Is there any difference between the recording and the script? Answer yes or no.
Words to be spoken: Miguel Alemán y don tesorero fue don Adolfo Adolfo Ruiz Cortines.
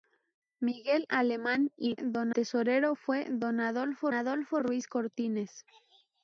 no